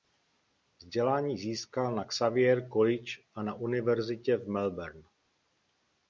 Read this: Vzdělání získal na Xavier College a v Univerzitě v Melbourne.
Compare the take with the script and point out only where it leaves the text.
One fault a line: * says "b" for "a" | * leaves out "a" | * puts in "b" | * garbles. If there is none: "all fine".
* says "na" for "v"